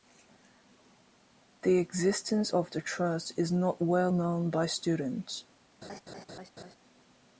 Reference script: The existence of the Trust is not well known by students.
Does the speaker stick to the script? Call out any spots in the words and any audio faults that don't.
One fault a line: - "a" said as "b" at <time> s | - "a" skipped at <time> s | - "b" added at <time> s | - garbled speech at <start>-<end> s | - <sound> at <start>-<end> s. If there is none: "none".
- laugh at 5.8-6.8 s